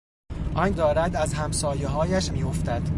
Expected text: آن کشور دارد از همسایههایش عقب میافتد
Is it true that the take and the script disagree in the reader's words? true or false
true